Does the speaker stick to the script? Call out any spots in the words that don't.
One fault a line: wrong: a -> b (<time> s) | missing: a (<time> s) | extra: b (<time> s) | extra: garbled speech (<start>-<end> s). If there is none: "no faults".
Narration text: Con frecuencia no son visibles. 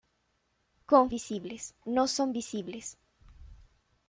wrong: frecuencia -> visibles (1.1 s)